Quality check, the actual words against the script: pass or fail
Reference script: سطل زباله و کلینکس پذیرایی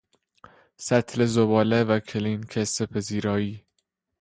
pass